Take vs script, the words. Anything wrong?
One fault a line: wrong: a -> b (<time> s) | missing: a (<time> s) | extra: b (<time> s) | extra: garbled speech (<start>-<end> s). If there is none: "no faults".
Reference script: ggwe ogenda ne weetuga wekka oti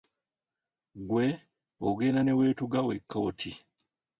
no faults